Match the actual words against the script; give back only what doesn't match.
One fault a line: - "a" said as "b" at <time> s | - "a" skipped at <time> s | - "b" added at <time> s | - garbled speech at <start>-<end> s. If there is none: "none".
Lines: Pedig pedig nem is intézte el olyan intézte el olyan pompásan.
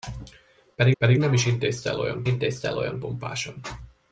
none